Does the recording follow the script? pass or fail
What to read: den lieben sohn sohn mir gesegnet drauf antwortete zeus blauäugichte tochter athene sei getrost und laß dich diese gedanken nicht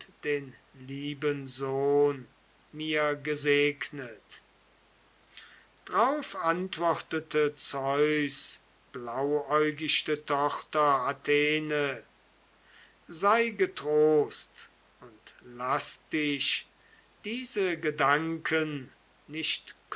fail